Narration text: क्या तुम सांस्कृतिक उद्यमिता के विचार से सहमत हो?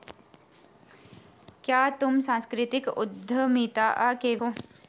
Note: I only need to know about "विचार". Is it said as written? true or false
false